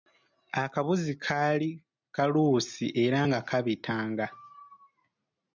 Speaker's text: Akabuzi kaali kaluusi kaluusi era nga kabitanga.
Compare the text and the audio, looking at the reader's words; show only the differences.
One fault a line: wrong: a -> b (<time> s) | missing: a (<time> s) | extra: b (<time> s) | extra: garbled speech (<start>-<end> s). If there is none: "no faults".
missing: kaluusi (2.9 s)